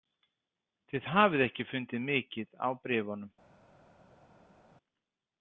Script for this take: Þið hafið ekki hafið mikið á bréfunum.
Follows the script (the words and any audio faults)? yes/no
no